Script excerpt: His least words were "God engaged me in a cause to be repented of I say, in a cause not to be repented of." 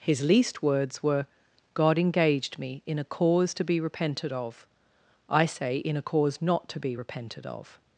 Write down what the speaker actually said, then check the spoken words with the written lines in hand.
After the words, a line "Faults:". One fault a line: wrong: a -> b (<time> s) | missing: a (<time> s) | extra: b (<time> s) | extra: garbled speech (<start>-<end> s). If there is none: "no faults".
His least words were "God engaged me in a cause to be repented of I say, in a cause not to be repented of."
Faults:
no faults